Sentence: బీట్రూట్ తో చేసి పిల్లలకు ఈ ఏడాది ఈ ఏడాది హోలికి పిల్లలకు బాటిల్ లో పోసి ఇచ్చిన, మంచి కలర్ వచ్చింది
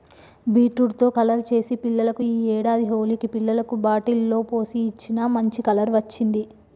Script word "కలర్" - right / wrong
right